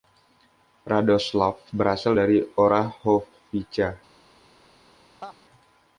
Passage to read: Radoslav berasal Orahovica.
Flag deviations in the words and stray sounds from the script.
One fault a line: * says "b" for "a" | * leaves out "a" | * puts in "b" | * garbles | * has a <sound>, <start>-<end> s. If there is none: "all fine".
* puts in "dari"
* has a laugh, 5.2-5.4 s